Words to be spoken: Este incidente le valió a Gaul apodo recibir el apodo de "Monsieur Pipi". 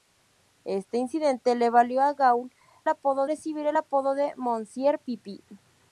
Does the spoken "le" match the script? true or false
true